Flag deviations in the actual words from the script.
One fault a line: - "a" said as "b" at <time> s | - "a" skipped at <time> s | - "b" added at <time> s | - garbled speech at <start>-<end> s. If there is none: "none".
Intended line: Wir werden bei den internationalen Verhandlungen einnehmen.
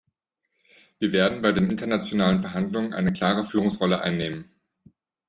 - "eine klare Führungsrolle" added at 2.9 s